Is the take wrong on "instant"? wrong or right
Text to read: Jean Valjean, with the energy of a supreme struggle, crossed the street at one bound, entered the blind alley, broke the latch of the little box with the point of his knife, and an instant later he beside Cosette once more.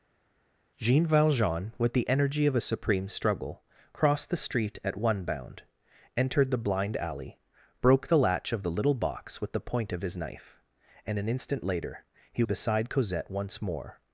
right